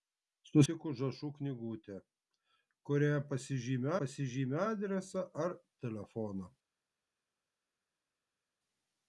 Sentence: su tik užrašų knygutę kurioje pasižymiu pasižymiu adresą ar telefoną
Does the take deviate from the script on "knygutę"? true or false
false